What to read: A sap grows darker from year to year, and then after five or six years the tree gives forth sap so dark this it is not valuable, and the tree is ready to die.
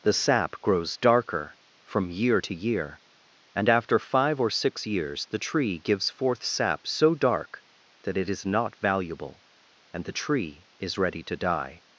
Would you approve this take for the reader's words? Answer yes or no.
no